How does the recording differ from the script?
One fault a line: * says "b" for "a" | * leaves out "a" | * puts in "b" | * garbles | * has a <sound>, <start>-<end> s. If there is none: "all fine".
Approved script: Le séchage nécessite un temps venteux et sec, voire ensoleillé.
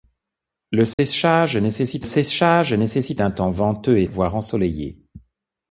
* has a dropout, 0.9-1.0 s
* puts in "séchage nécessite"
* leaves out "sec"